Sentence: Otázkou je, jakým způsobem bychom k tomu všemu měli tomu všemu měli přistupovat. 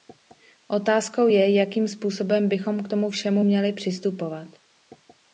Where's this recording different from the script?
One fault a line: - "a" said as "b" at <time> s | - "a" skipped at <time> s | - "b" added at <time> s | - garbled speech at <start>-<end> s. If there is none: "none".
- "tomu všemu měli" skipped at 3.7 s